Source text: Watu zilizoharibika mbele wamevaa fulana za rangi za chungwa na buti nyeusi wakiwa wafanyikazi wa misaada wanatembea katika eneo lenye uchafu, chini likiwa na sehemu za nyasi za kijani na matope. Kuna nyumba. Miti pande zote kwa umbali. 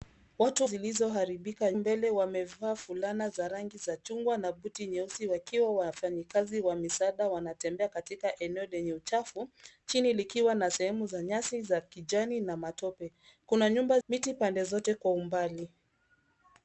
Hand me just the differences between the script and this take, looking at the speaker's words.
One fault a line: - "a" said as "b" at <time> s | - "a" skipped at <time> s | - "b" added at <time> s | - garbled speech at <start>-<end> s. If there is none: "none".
none